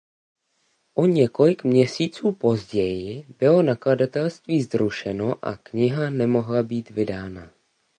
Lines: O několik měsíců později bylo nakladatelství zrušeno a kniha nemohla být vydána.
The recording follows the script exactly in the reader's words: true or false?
true